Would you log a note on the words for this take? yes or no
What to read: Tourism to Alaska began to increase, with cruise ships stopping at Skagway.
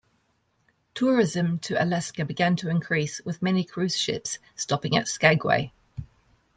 yes